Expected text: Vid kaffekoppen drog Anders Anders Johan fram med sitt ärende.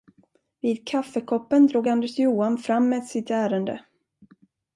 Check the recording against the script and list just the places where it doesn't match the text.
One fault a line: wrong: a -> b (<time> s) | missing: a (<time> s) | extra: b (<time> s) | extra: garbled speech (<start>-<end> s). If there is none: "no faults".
missing: Anders (2.2 s)